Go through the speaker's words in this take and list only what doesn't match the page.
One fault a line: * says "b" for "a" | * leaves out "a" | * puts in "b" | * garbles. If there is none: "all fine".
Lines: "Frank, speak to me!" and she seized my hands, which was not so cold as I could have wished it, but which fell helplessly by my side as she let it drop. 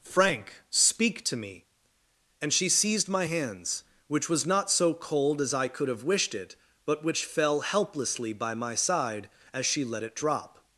all fine